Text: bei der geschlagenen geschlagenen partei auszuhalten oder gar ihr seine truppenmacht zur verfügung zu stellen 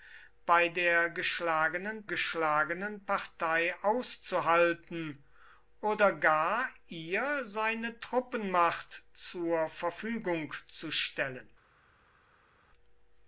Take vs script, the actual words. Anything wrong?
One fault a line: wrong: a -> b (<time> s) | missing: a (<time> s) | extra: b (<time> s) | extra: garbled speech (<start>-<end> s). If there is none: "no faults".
no faults